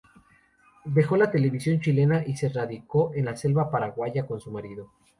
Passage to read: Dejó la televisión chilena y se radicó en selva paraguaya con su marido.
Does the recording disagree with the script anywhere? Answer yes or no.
yes